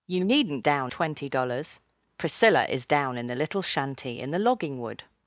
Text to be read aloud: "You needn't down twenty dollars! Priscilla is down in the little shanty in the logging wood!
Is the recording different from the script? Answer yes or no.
no